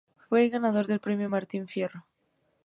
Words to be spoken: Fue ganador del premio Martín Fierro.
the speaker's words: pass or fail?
pass